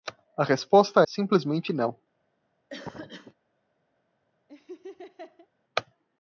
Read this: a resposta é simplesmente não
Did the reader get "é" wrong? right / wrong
wrong